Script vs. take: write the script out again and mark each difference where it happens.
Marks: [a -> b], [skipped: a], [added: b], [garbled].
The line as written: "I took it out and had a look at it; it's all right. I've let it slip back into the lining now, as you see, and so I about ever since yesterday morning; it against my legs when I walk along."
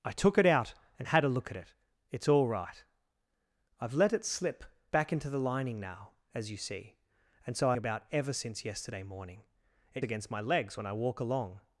"I took it out and had a look at it; it's all right. I've let it slip back into the lining now, as you see, and so I about ever since yesterday morning; it against my legs when I walk along."